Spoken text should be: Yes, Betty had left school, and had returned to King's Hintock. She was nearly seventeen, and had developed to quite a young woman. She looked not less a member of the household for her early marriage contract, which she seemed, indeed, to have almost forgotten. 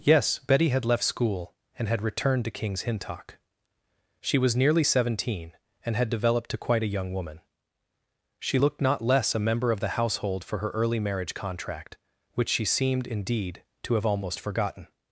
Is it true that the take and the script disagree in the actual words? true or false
false